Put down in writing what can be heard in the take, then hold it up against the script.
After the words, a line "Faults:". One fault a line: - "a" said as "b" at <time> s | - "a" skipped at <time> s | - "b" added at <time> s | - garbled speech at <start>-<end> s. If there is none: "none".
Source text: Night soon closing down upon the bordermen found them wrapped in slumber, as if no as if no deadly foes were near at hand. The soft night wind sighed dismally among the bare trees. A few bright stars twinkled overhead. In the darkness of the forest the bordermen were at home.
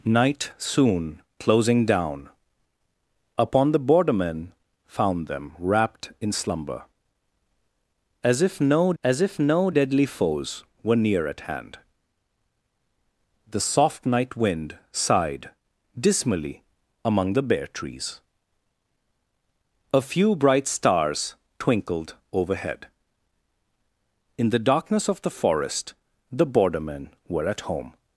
Night soon closing down upon the bordermen found them wrapped in slumber, as if no as if no deadly foes were near at hand. The soft night wind sighed dismally among the bare trees. A few bright stars twinkled overhead. In the darkness of the forest the bordermen were at home.
Faults:
none